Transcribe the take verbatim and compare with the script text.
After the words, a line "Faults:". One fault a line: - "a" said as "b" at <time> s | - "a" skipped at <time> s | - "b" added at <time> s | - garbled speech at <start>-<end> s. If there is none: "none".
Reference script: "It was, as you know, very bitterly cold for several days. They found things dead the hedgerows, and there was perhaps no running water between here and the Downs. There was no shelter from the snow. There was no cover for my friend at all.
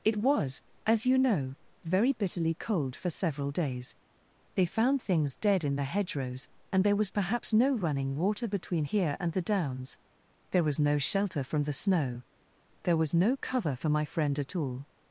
"It was, as you know, very bitterly cold for several days. They found things dead in the hedgerows, and there was perhaps no running water between here and the Downs. There was no shelter from the snow. There was no cover for my friend at all.
Faults:
- "in" added at 5.6 s